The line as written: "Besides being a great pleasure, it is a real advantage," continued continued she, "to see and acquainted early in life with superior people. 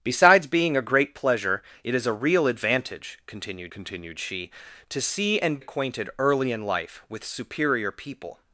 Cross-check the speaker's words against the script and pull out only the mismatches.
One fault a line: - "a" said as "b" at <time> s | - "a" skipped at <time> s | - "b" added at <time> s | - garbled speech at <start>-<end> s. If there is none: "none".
none